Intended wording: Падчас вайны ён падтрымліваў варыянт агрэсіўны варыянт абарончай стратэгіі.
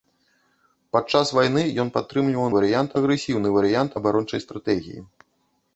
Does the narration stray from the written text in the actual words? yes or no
no